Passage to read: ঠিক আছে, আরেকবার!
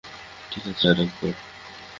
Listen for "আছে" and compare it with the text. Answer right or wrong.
right